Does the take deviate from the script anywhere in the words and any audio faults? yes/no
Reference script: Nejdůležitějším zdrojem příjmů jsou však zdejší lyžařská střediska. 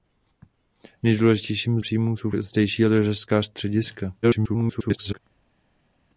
yes